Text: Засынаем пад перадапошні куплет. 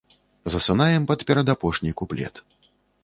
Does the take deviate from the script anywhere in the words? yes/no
no